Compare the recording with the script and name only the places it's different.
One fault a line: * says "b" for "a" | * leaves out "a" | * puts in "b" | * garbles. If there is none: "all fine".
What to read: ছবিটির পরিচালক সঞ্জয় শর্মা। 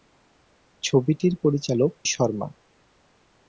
* leaves out "সঞ্জয়"